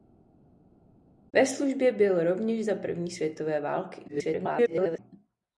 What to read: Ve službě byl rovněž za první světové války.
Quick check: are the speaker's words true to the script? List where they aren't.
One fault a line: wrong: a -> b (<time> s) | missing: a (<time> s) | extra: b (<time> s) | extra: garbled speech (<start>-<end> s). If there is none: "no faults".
extra: garbled speech (4.1-5.0 s)